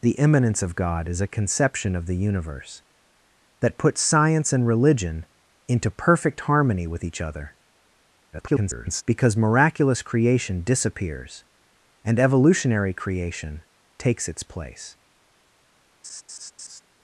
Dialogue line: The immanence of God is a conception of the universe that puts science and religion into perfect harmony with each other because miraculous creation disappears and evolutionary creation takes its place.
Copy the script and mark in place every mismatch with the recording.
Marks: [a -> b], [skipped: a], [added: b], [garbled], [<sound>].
The immanence of God is a conception of the universe that puts science and religion into perfect harmony with each other [garbled] because miraculous creation disappears and evolutionary creation takes its place. [laugh]